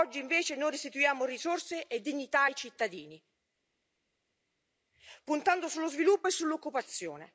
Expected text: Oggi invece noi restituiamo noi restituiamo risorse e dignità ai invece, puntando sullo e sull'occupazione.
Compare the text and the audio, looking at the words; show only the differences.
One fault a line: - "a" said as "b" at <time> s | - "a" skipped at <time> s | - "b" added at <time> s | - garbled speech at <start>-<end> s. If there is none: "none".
- "noi restituiamo" skipped at 1.2 s
- "invece" said as "cittadini" at 2.5 s
- "sviluppo" added at 5.9 s